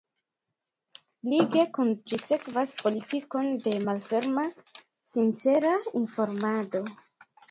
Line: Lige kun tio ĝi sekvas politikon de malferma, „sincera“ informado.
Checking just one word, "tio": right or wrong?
wrong